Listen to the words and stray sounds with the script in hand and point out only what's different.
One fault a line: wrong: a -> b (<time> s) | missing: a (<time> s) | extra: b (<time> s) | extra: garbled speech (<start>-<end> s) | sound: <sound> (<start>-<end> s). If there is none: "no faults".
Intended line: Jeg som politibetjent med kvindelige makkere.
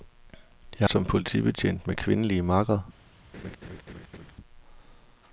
sound: laugh (3.3-4.3 s)